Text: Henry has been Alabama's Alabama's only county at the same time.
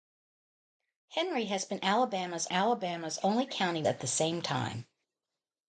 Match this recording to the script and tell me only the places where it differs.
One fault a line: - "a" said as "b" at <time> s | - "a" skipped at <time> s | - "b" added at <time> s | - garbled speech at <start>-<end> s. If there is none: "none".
none